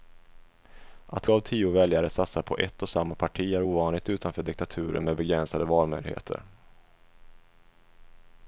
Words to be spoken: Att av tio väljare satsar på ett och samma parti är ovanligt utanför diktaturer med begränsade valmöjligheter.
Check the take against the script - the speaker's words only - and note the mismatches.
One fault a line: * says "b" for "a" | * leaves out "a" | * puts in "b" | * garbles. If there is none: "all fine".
all fine